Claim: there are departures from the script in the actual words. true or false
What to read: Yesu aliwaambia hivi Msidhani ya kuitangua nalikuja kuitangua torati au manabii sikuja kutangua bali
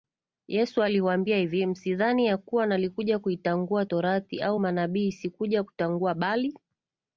true